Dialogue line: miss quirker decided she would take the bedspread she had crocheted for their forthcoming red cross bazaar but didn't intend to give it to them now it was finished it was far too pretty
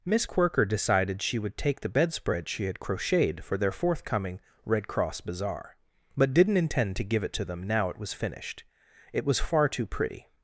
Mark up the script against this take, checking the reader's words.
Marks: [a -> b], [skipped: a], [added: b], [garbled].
miss quirker decided she would take the bedspread she had crocheted for their forthcoming red cross bazaar but didn't intend to give it to them now it was finished it was far too pretty